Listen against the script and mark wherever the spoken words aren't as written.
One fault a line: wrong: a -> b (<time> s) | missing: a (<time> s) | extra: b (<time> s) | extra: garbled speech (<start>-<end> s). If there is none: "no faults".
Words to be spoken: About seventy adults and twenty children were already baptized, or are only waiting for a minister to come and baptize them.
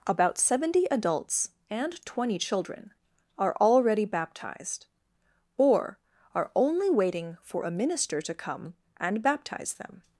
wrong: were -> are (3.4 s)